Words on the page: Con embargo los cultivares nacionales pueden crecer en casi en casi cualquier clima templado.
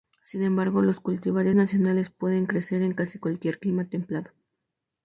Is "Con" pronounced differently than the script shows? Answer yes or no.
yes